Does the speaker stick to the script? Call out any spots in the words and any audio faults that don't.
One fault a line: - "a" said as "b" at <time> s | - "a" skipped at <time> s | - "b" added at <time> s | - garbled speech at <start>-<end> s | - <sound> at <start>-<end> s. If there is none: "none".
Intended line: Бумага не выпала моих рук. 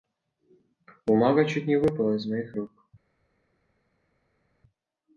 - "чуть" added at 1.4 s
- "из" added at 2.1 s